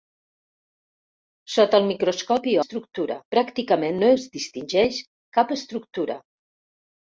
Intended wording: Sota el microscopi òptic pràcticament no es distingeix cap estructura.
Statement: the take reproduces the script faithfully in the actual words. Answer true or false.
false